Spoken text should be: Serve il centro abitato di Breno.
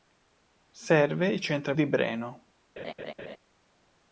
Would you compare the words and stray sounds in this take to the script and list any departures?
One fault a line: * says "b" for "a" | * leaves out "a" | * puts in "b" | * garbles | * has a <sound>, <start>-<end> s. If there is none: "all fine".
* leaves out "abitato"
* has a laugh, 2.8-3.4 s